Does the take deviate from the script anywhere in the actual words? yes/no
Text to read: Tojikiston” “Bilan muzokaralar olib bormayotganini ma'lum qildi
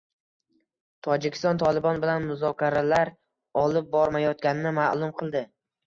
yes